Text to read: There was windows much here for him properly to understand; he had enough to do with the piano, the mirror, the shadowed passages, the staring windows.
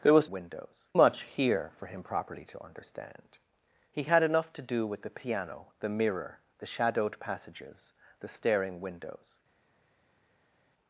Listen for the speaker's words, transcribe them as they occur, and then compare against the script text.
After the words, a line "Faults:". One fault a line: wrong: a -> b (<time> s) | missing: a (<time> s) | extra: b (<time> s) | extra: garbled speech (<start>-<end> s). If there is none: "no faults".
There was windows much here for him properly to understand; he had enough to do with the piano, the mirror, the shadowed passages, the staring windows.
Faults:
no faults